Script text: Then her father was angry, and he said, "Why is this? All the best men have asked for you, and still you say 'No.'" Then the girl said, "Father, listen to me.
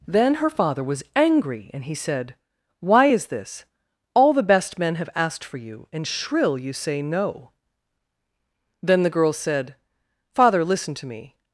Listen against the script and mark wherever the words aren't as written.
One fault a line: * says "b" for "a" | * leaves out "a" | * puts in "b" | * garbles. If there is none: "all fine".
* says "shrill" for "still"